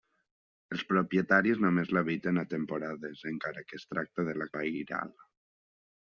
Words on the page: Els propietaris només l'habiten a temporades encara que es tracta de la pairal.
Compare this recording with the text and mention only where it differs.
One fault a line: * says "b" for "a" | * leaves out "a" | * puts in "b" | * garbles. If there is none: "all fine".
all fine